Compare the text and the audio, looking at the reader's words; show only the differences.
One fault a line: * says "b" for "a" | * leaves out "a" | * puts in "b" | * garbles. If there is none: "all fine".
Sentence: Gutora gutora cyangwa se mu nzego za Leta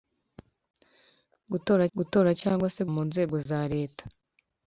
all fine